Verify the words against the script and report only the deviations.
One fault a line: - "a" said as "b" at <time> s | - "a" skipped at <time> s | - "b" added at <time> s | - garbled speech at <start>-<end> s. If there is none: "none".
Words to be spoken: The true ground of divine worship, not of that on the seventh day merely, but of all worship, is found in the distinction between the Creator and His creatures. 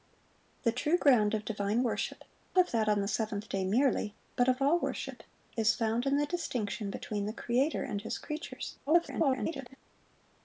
- "not" skipped at 2.2 s
- garbled speech at 8.9-9.8 s